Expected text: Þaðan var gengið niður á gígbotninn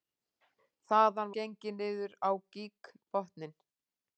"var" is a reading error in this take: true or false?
true